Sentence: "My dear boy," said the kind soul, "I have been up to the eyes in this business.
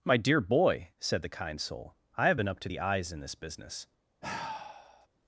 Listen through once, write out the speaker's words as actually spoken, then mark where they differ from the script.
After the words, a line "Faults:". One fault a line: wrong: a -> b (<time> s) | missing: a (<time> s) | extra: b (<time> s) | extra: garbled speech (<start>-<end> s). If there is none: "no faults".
"My dear boy," said the kind soul, "I have been up to the eyes in this business.
Faults:
no faults